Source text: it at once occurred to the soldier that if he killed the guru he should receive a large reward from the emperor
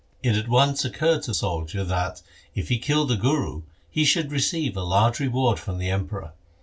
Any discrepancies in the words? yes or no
yes